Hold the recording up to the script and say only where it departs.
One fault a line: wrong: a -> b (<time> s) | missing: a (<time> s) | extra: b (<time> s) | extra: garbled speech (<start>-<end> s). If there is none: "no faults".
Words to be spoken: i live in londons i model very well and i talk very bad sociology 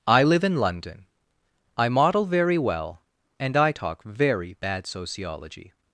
wrong: londons -> london (0.6 s)